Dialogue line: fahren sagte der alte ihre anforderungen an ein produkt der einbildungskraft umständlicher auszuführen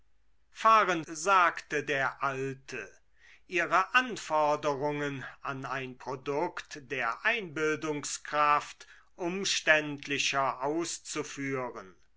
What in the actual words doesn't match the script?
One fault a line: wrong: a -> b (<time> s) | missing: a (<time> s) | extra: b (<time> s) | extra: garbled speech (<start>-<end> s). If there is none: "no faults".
no faults